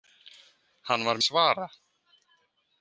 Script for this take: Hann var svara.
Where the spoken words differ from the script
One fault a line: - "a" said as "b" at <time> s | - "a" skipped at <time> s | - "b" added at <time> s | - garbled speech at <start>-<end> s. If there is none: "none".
none